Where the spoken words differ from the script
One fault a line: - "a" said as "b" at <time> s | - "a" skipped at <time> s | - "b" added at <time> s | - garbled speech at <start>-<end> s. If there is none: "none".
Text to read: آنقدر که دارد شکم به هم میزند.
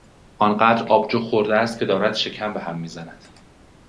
- "آبجو خورده است" added at 0.9 s